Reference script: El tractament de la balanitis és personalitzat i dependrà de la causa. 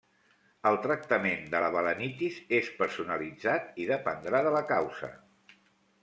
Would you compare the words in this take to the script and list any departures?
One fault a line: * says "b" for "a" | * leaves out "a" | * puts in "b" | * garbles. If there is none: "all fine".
all fine